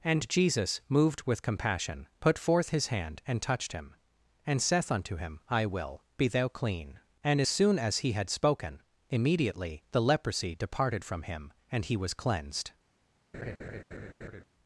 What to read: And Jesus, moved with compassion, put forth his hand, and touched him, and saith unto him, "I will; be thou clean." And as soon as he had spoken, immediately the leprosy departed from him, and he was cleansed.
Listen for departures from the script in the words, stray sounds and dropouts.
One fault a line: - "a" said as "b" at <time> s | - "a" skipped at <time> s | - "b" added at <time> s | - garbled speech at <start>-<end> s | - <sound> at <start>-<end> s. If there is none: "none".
- laugh at 13.3-14.4 s